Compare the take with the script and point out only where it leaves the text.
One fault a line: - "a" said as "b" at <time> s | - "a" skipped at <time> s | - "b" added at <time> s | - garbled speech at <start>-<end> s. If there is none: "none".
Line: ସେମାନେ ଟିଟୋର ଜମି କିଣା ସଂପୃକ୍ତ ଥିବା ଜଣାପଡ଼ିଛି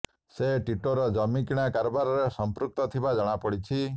- "ସେମାନେ" said as "ସେ" at 0.3 s
- "କାରବାରରେ" added at 1.7 s